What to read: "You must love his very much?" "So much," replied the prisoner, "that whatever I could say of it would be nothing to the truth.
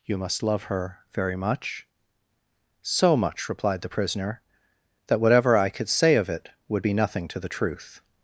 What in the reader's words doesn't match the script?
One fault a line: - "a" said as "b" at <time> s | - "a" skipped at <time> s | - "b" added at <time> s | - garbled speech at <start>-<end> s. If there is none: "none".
- "his" said as "her" at 0.6 s